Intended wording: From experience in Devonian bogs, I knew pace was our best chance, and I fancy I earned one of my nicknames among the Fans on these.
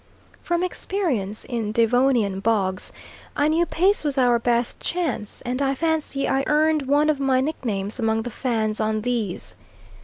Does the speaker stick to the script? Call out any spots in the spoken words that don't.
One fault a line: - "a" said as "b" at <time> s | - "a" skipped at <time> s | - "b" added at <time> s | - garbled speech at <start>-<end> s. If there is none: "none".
none